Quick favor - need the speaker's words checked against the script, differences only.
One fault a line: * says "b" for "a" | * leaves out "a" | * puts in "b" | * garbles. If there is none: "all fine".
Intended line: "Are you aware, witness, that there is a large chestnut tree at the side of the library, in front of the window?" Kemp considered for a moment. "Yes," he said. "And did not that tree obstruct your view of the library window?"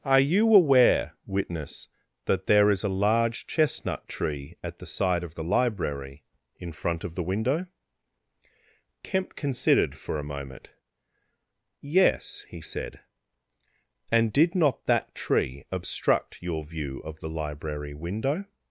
all fine